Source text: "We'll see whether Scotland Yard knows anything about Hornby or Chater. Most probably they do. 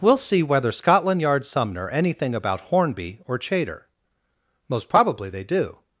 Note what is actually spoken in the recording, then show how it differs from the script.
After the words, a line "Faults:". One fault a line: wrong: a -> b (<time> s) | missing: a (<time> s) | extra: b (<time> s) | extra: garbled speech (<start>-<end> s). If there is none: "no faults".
"We'll see whether Scotland Yard sumner anything about Hornby or Chater. Most probably they do.
Faults:
wrong: knows -> sumner (1.4 s)